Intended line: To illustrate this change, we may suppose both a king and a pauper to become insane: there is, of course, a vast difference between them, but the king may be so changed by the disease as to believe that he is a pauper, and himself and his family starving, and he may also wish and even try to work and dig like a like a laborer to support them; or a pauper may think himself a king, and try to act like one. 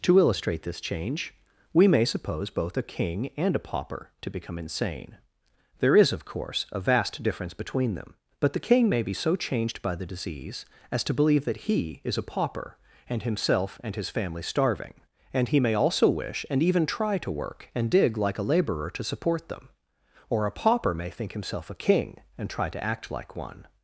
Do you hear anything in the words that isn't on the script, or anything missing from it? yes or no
yes